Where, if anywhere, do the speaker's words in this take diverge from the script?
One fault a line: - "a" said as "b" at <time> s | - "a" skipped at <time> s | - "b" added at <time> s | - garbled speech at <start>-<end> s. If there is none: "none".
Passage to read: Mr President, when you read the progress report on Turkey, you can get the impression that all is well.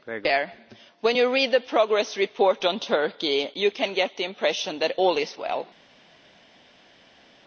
none